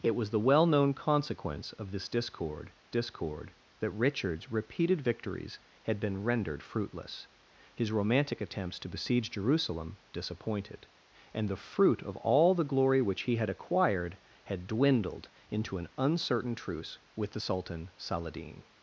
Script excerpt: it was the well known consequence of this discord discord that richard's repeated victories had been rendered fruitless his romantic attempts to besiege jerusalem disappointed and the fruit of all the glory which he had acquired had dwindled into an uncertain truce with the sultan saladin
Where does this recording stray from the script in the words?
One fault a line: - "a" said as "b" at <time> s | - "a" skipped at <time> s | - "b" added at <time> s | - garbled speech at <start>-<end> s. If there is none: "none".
none